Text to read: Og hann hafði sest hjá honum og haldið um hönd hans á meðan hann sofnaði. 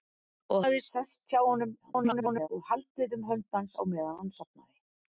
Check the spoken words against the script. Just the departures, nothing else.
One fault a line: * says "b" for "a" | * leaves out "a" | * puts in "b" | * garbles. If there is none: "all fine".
* leaves out "hann"
* garbles